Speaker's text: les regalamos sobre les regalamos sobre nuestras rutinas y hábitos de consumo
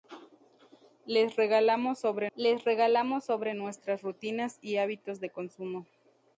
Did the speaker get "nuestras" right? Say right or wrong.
right